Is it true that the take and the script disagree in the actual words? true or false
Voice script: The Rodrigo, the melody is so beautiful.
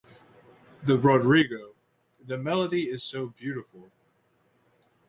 false